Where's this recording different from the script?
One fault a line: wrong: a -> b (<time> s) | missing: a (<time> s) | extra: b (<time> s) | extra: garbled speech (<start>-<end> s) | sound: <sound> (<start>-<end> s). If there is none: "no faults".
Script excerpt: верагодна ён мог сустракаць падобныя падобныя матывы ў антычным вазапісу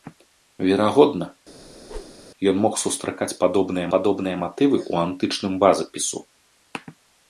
sound: whoosh (1.6-2.3 s)